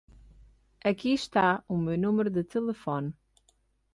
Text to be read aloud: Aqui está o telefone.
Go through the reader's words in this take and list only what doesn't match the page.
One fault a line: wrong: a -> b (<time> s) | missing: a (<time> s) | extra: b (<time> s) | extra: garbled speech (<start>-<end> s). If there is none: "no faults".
extra: meu número de (1.8 s)